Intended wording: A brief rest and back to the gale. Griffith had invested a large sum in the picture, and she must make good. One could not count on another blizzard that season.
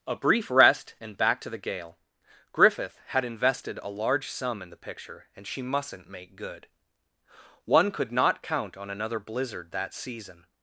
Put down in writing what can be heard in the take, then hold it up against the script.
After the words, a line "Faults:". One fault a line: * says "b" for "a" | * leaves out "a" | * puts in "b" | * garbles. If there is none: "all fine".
A brief rest and back to the gale. Griffith had invested a large sum in the picture, and she mustn't make good. One could not count on another blizzard that season.
Faults:
* says "mustn't" for "must"